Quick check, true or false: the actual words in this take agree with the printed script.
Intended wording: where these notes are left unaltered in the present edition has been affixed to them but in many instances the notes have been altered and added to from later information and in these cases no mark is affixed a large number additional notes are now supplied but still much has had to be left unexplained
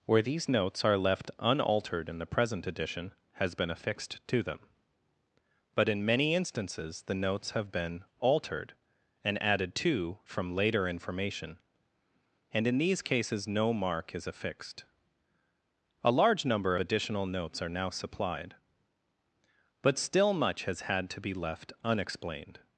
true